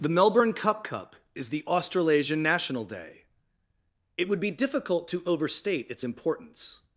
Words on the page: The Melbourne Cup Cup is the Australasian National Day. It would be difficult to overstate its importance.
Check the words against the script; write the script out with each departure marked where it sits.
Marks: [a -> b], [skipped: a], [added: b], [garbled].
The Melbourne Cup Cup is the Australasian National Day. It would be difficult to overstate its importance.